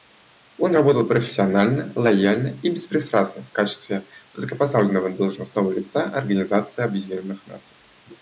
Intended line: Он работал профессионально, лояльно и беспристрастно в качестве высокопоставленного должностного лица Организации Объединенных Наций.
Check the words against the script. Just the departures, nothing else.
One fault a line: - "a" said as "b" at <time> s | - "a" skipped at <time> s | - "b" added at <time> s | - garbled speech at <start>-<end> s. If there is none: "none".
none